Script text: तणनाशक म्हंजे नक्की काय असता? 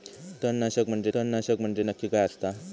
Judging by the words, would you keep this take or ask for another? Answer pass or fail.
fail